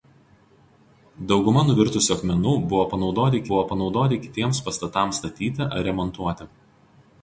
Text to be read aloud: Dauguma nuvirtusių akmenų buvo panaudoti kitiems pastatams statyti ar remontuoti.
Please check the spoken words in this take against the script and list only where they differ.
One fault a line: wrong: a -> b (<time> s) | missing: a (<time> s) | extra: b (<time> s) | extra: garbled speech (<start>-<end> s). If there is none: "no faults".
extra: buvo panaudoti (3.5 s)